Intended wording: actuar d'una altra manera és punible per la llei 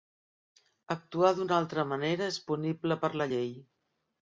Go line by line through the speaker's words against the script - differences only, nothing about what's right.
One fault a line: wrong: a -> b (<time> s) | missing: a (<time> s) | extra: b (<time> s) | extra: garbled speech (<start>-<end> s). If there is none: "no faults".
no faults